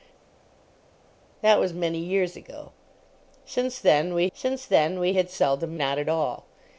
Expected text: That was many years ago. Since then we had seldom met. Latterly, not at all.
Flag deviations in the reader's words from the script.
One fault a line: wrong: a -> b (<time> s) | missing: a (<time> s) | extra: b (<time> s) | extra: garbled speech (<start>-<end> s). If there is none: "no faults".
extra: since then we (4.3 s)
missing: met Latterly (5.8 s)